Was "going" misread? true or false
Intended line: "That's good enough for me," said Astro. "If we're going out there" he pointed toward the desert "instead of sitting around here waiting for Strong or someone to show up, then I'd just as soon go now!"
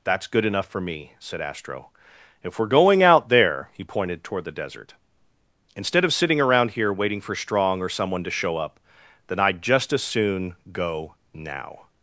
false